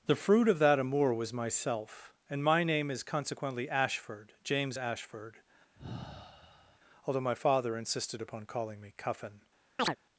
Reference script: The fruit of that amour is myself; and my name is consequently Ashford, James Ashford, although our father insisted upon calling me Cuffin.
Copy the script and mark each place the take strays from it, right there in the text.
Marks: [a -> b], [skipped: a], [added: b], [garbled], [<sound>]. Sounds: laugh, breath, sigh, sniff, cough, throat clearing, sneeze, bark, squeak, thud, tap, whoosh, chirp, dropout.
The fruit of that amour [is -> was] myself; and my name is consequently Ashford, James Ashford, [sigh] although [our -> my] father insisted upon calling me Cuffin. [chirp]